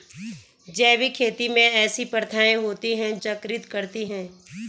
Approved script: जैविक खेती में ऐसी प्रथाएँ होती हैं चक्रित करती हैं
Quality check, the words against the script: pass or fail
pass